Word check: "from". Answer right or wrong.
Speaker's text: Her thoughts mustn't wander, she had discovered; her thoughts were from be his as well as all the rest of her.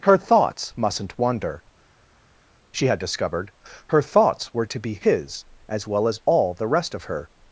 wrong